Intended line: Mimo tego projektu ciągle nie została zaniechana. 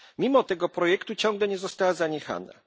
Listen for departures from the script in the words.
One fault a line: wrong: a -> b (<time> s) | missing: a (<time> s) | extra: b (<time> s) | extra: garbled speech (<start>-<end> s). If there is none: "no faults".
no faults